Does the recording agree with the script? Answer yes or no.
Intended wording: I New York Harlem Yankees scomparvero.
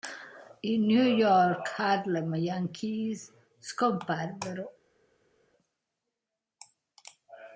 yes